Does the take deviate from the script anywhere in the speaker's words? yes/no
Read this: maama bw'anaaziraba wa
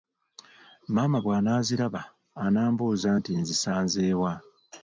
yes